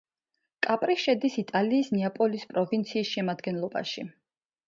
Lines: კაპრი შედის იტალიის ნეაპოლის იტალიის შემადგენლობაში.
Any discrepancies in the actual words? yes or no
yes